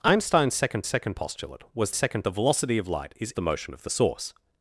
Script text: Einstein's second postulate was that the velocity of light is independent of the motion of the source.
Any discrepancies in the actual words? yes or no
yes